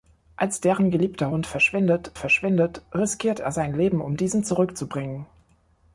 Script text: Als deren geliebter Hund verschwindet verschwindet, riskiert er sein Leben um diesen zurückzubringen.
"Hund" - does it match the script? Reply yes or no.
yes